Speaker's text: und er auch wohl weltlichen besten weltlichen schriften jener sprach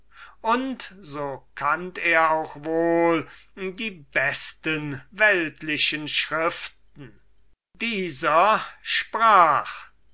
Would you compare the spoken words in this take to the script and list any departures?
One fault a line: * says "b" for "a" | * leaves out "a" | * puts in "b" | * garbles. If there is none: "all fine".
* puts in "so kannt"
* says "die" for "weltlichen"
* says "dieser" for "jener"